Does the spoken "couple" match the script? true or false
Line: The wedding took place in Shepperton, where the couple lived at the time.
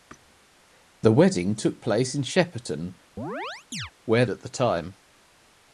false